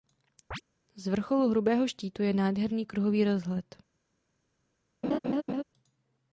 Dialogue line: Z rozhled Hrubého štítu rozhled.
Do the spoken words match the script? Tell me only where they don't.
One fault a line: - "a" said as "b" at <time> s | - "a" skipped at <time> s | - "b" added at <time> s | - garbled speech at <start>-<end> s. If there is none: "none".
- "rozhled" said as "vrcholu" at 1.1 s
- "je nádherný kruhový" added at 2.2 s